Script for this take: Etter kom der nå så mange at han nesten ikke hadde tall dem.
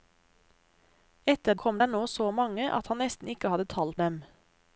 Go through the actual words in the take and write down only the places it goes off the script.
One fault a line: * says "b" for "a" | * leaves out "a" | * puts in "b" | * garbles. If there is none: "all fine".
all fine